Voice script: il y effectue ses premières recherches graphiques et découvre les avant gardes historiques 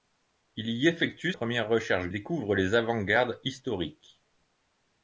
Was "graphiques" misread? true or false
true